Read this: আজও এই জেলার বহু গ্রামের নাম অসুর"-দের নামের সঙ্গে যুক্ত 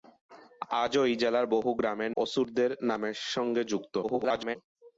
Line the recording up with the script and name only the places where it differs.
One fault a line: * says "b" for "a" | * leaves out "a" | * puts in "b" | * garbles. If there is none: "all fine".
* leaves out "নাম"
* garbles